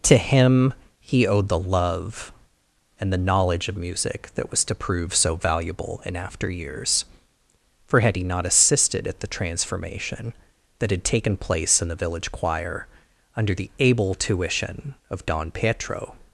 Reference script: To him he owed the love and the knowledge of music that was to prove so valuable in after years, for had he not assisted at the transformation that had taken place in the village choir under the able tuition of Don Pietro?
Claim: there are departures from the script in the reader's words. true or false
false